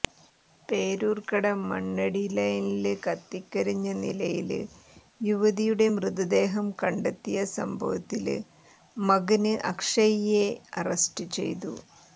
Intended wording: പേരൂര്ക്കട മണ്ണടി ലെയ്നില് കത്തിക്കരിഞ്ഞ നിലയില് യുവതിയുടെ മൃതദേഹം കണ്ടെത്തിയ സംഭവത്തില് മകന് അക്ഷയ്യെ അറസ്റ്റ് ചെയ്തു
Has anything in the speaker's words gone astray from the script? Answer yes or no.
no